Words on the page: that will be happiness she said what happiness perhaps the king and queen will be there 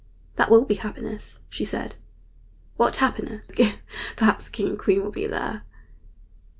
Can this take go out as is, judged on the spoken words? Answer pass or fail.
pass